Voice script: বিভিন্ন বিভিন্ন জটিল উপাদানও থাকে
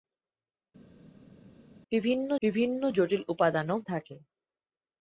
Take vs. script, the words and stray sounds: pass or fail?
pass